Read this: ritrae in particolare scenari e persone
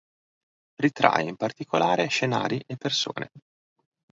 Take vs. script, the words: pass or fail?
pass